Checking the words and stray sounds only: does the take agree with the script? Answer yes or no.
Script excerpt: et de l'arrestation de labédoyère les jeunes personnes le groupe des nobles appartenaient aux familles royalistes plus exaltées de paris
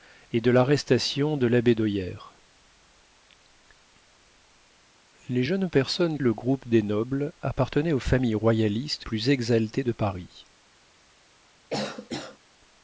no